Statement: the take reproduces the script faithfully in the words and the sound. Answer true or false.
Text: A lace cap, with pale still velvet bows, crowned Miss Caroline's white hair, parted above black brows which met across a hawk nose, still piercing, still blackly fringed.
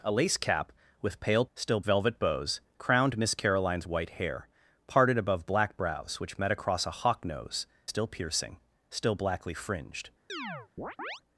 false